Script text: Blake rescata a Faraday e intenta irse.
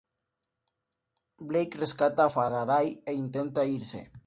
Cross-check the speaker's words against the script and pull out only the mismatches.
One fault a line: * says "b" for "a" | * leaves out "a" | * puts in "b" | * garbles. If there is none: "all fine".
all fine